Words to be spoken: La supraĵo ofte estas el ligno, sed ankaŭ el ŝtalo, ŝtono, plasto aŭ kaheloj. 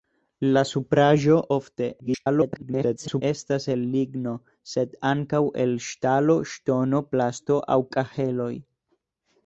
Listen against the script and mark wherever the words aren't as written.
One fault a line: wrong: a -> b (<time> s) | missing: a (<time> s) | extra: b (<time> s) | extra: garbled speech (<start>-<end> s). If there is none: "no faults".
extra: garbled speech (2.0-3.2 s)